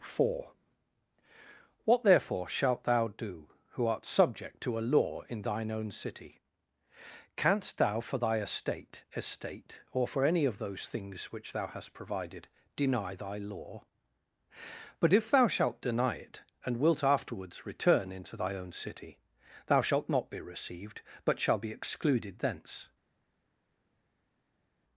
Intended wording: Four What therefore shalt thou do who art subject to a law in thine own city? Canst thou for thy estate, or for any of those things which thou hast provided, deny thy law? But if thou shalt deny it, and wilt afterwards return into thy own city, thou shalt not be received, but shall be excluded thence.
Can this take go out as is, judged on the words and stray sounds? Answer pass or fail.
fail